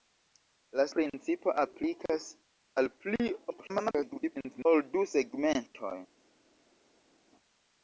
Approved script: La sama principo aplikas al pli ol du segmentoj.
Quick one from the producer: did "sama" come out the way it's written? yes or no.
no